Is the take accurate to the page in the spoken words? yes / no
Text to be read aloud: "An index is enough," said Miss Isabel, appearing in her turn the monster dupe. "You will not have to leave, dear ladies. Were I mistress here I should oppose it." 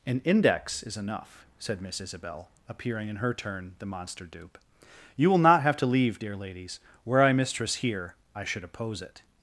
yes